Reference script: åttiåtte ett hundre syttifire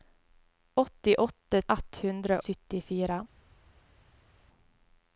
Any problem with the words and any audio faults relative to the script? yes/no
no